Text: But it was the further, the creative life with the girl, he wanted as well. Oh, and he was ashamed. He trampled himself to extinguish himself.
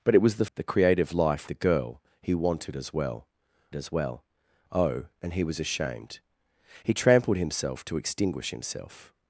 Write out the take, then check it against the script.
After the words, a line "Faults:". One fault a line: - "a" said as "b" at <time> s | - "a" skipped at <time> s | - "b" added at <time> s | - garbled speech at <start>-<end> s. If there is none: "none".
But it was the the creative life the girl, he wanted as well as well. Oh, and he was ashamed. He trampled himself to extinguish himself.
Faults:
- "further" skipped at 0.5 s
- "with" skipped at 1.5 s
- "as well" added at 3.7 s